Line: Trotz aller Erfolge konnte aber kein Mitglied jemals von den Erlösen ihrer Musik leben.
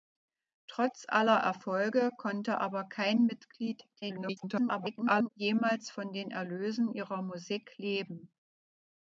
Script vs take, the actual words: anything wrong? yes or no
yes